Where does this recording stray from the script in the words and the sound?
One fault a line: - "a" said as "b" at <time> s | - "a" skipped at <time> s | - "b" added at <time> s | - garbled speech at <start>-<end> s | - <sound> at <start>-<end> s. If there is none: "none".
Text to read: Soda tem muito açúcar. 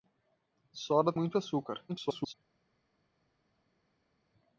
- "tem" skipped at 1.1 s
- garbled speech at 1.9-2.3 s